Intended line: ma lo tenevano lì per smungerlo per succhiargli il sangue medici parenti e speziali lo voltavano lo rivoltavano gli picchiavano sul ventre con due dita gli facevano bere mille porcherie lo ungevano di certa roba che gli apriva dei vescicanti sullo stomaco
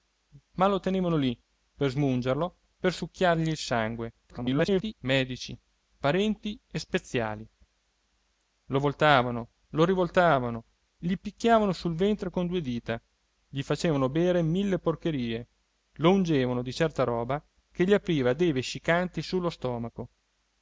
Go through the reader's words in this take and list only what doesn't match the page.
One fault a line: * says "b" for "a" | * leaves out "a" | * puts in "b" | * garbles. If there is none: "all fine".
* garbles